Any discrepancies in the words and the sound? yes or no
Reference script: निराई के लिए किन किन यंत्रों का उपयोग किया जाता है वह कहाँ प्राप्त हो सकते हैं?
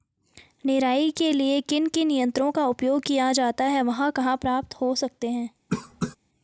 yes